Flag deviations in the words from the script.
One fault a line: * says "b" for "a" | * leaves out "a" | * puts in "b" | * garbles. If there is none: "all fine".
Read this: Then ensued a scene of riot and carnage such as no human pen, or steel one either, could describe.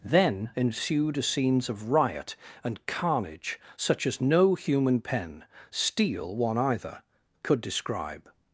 * says "scenes" for "scene"
* leaves out "or"